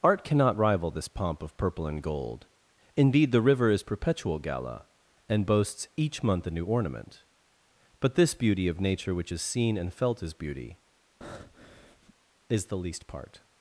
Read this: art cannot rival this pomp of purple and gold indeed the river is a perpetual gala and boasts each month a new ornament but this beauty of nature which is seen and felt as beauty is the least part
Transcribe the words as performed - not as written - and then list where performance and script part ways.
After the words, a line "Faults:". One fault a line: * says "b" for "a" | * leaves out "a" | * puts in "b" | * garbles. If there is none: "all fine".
art cannot rival this pomp of purple and gold indeed the river is perpetual gala and boasts each month a new ornament but this beauty of nature which is seen and felt as beauty is the least part
Faults:
* leaves out "a"